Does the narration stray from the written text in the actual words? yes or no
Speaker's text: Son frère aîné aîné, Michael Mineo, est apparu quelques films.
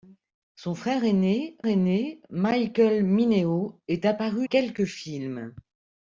no